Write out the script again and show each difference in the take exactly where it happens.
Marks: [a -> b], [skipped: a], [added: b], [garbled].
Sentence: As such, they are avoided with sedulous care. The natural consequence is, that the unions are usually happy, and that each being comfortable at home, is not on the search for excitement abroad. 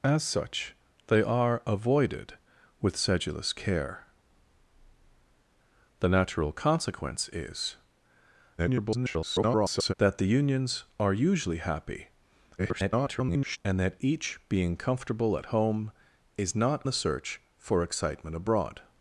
As such, they are avoided with sedulous care. The natural consequence is, [garbled] that the unions are usually happy, [garbled] and that each being comfortable at home, is not [skipped: on] the search for excitement abroad.